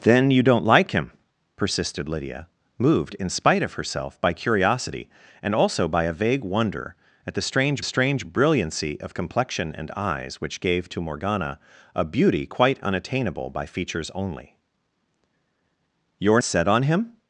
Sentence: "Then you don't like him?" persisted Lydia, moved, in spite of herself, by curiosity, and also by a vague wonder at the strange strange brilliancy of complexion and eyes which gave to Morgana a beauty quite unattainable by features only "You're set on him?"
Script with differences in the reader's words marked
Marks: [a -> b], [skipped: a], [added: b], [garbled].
"Then you don't like him?" persisted Lydia, moved, in spite of herself, by curiosity, and also by a vague wonder at the strange strange brilliancy of complexion and eyes which gave to Morgana a beauty quite unattainable by features only "You're set on him?"